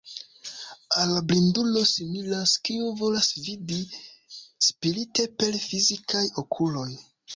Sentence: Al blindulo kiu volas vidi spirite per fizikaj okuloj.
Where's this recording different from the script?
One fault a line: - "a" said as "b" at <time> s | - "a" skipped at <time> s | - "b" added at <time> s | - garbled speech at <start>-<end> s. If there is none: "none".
- "similas" added at 1.9 s